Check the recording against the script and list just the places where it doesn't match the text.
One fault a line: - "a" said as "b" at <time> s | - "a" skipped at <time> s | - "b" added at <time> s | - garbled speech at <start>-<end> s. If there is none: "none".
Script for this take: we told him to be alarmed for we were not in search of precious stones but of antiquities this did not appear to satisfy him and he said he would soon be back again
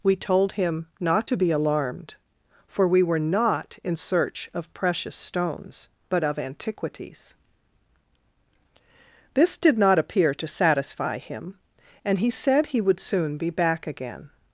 - "not" added at 1.0 s